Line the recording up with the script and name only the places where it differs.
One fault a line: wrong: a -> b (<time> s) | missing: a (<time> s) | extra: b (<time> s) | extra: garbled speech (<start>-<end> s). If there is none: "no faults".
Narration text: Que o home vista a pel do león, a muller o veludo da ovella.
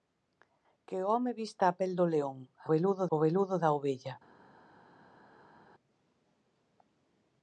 wrong: muller -> veludo (2.7 s)